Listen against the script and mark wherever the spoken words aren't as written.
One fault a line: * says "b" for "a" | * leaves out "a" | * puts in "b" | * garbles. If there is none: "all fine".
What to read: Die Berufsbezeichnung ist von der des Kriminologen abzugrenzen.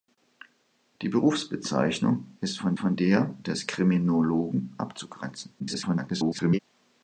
* puts in "von"
* garbles